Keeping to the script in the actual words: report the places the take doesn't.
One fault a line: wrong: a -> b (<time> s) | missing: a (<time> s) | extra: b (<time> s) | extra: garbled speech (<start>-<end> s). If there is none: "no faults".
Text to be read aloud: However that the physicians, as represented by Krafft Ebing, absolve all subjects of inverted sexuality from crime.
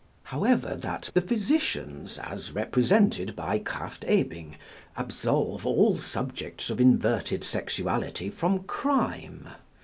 no faults